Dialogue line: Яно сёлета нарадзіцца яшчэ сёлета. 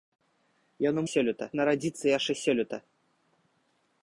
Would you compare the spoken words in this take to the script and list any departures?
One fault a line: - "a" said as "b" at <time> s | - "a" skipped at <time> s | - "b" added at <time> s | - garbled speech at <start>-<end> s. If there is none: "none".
none